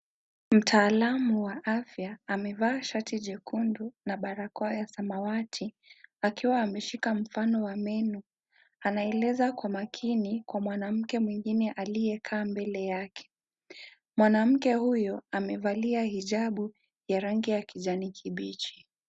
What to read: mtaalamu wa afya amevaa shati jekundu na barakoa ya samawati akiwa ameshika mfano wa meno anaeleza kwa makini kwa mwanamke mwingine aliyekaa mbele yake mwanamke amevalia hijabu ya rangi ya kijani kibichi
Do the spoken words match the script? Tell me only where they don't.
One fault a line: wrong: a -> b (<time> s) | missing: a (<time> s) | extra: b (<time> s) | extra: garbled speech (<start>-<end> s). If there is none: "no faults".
extra: huyo (14.7 s)